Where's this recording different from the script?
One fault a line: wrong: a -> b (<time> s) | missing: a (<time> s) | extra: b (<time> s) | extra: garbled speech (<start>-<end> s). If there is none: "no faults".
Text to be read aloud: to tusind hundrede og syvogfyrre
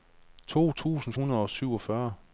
no faults